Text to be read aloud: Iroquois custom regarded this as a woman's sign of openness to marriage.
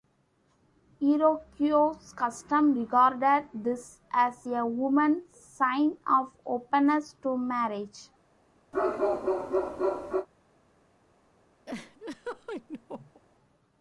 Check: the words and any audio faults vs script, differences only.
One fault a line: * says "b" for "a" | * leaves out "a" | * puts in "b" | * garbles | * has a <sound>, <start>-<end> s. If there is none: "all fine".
* has a bark, 8.7-10.3 s
* has a laugh, 11.7-13.2 s